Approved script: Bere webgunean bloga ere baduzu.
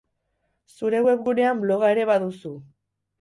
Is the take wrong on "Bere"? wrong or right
wrong